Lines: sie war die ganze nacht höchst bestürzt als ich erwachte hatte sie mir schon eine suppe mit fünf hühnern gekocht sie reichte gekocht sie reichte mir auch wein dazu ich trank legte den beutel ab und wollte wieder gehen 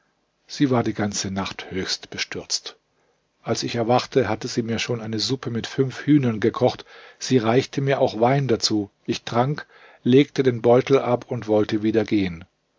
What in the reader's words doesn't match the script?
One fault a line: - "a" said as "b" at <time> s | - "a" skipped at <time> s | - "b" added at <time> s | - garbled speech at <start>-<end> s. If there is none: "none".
- "gekocht sie reichte" skipped at 7.8 s